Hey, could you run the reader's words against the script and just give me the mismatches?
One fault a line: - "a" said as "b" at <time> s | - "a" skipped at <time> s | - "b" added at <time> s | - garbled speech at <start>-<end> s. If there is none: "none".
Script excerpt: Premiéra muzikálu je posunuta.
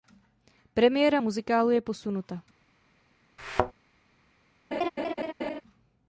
none